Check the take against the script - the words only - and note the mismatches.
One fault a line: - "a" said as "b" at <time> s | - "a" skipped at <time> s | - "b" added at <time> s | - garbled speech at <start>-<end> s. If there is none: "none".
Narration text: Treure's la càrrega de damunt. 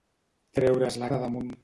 - "càrrega" skipped at 1.1 s